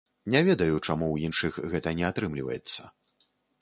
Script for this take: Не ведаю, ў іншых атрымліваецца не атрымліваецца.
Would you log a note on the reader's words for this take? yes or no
yes